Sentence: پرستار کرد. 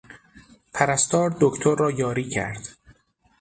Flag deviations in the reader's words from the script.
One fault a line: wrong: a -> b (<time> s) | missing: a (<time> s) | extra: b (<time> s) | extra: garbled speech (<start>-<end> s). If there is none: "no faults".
extra: دکتر را یاری (1.4 s)